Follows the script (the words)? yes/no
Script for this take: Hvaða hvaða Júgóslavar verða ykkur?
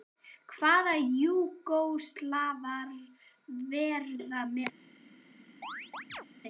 no